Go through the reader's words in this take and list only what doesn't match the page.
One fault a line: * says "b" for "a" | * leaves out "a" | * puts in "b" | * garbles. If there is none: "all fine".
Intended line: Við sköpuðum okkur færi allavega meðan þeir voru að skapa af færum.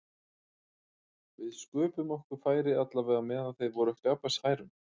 all fine